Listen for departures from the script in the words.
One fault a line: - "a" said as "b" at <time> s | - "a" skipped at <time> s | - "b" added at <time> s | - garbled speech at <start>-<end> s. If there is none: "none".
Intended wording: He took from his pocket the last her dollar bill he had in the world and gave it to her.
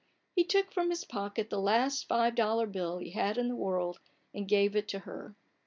- "her" said as "five" at 2.1 s